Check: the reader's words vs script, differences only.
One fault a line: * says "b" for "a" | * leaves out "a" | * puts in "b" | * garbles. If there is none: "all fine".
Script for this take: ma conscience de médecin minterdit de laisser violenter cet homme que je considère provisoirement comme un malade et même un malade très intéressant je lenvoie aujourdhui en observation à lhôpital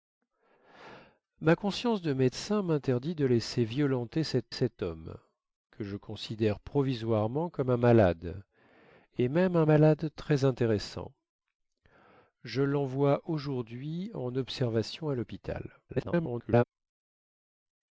* puts in "cet"
* garbles